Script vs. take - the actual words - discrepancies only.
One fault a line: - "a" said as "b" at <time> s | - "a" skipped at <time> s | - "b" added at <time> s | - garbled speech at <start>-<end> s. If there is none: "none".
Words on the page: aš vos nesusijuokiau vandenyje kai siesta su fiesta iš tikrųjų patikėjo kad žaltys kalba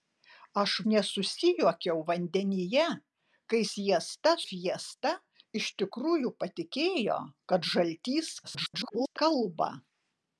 - "vos" skipped at 0.7 s
- "su" skipped at 4.4 s
- garbled speech at 8.4-9.2 s